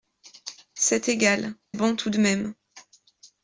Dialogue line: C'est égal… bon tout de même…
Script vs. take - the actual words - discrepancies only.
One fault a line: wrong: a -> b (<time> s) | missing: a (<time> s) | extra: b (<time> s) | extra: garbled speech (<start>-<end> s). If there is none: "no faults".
no faults